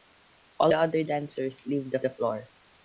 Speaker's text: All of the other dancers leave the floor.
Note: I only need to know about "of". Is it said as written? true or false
false